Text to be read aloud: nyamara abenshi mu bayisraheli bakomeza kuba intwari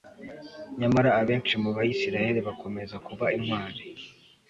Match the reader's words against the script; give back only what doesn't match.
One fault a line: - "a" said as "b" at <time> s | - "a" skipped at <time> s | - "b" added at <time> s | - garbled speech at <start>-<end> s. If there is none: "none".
none